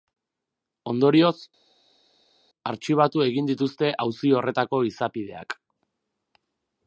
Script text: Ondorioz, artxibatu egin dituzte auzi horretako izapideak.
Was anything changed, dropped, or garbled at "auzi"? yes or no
no